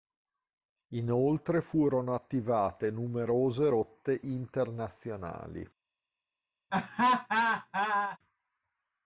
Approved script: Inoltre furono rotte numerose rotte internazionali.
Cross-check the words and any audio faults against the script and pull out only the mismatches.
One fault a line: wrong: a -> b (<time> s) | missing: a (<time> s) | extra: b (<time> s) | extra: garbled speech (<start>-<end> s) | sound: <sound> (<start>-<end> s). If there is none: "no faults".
wrong: rotte -> attivate (2.1 s)
sound: laugh (6.7-8.2 s)